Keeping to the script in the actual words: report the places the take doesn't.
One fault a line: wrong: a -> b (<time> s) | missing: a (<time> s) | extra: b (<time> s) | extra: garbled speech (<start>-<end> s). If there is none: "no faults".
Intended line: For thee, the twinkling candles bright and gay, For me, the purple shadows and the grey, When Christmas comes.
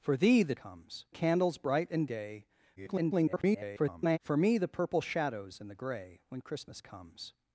wrong: twinkling -> comes (0.5 s)
extra: garbled speech (2.8-4.2 s)